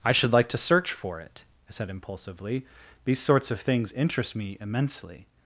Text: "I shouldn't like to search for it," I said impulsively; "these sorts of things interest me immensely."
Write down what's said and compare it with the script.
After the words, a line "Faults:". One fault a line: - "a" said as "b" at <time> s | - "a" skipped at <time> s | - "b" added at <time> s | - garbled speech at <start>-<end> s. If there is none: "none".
"I should like to search for it," I said impulsively; "these sorts of things interest me immensely."
Faults:
- "shouldn't" said as "should" at 0.1 s